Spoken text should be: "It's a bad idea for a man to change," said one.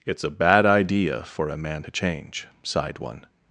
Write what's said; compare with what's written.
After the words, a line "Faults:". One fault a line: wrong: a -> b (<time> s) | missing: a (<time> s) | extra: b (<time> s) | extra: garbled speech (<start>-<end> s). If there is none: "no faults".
"It's a bad idea for a man to change," sighed one.
Faults:
wrong: said -> sighed (2.6 s)